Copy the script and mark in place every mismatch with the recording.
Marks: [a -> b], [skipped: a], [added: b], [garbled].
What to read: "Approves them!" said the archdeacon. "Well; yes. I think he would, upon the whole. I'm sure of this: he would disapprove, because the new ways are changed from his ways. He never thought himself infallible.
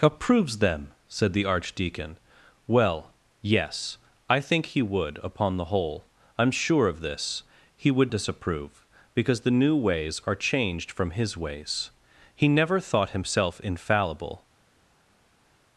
"Approves them!" said the archdeacon. "Well; yes. I think he would, upon the whole. I'm sure of this: he would disapprove, because the new ways are changed from his ways. He never thought himself infallible.